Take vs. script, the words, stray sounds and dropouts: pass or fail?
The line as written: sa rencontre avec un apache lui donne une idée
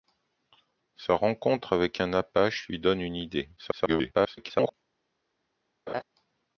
fail